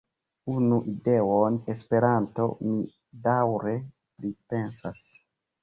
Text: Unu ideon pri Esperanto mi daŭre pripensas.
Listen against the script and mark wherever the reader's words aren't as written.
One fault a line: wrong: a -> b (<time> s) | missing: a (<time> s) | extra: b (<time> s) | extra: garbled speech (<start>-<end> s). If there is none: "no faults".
missing: pri (1.6 s)